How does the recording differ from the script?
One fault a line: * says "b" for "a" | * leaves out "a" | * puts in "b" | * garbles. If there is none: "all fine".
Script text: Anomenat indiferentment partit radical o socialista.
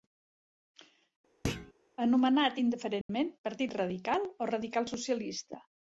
* puts in "radical"